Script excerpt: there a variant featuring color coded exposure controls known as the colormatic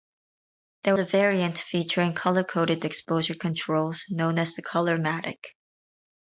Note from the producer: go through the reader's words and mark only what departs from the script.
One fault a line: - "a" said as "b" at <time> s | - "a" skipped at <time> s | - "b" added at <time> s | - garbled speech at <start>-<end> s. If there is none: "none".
none